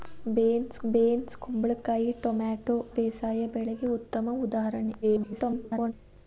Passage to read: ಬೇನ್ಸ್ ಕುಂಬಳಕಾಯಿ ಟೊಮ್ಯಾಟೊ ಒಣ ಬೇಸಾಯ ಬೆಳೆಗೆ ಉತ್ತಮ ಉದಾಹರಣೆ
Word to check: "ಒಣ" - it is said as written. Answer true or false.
false